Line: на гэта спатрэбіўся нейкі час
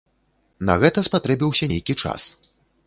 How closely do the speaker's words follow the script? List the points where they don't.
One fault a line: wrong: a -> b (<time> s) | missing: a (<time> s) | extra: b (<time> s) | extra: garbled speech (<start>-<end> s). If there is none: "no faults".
no faults